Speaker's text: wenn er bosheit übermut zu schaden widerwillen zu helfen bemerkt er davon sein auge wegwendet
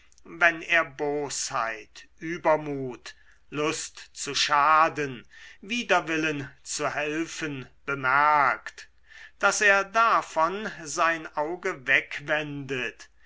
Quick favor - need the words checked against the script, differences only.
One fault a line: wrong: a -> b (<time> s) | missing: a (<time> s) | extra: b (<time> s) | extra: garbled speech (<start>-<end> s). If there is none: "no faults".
extra: lust (3.5 s)
extra: daß (9.4 s)